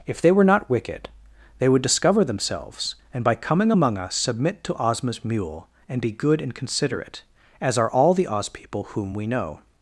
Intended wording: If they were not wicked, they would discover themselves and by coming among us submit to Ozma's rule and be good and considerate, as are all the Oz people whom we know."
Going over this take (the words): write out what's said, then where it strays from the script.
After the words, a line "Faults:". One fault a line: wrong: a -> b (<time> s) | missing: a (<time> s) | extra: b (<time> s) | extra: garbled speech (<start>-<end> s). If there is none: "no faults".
If they were not wicked, they would discover themselves and by coming among us submit to Ozma's mule and be good and considerate, as are all the Oz people whom we know."
Faults:
wrong: rule -> mule (5.2 s)